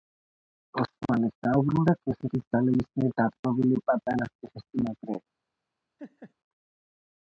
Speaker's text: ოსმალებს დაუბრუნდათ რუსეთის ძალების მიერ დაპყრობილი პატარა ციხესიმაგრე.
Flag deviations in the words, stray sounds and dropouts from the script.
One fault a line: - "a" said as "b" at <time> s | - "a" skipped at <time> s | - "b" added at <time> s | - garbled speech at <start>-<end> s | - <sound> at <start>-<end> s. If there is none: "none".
- laugh at 6.0-6.3 s